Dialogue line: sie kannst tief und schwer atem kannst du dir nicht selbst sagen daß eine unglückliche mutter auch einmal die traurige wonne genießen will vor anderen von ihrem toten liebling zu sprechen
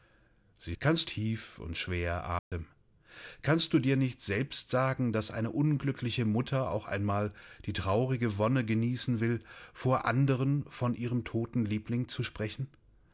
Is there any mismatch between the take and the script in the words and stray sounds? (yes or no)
yes